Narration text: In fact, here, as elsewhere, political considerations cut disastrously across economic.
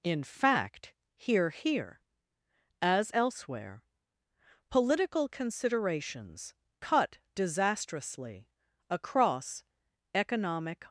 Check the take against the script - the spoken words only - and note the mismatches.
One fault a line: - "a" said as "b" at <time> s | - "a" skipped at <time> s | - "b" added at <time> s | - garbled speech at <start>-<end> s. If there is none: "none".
- "here" added at 1.5 s